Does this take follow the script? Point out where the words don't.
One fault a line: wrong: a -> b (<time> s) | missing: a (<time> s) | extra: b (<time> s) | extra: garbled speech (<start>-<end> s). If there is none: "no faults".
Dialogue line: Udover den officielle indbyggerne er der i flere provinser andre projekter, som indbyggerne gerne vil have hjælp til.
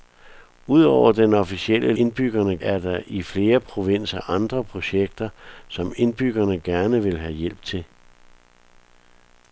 no faults